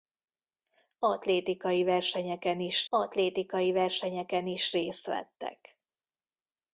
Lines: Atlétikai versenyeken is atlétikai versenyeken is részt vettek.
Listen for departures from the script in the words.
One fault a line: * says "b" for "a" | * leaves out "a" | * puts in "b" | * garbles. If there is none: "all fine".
all fine